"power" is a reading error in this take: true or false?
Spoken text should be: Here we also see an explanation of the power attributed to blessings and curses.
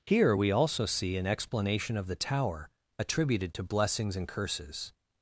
true